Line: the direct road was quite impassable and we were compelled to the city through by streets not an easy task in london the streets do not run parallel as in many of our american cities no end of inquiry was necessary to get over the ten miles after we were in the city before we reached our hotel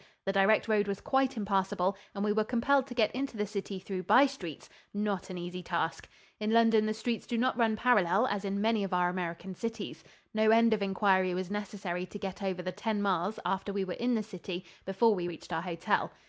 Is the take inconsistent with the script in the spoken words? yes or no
yes